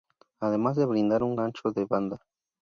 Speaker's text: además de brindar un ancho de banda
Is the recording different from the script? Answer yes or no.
no